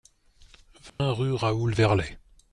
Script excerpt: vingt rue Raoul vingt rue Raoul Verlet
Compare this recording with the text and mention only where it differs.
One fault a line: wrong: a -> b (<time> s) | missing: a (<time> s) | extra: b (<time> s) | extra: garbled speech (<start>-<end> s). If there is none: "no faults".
missing: vingt rue Raoul (1.8 s)